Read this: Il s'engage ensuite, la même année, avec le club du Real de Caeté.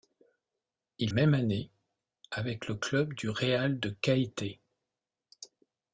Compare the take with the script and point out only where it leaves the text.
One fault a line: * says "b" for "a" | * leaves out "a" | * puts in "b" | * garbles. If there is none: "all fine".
* leaves out "s'engage ensuite la"